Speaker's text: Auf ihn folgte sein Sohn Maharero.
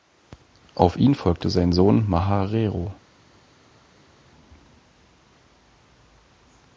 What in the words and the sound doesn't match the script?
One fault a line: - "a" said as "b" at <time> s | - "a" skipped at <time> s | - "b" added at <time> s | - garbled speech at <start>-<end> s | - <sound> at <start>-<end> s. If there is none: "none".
none